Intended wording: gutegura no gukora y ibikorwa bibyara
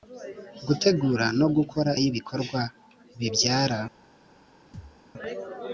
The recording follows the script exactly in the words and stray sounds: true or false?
false